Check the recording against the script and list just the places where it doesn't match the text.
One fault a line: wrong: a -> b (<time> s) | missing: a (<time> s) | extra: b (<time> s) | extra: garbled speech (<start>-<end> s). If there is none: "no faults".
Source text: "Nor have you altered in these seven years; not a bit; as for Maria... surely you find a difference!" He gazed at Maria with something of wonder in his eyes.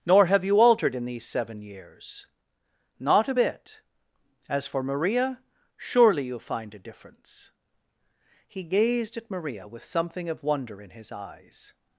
no faults